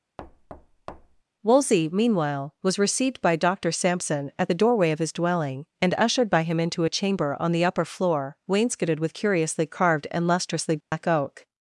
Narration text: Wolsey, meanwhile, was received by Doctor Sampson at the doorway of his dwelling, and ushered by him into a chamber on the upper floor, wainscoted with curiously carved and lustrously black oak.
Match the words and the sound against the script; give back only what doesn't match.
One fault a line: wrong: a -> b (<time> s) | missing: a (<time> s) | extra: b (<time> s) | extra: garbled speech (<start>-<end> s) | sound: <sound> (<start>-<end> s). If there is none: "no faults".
sound: thud (0.2-1.2 s)
sound: dropout (10.8-10.9 s)